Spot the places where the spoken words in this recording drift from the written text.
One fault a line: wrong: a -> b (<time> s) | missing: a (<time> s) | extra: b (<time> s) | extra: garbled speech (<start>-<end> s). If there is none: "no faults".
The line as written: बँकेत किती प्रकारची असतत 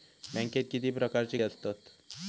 no faults